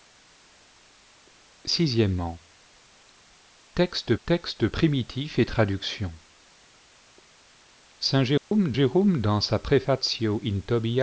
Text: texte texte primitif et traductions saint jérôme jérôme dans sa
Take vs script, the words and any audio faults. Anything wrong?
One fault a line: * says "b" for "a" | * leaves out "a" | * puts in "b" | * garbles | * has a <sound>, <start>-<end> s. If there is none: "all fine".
* has a dropout, 8.4-8.5 s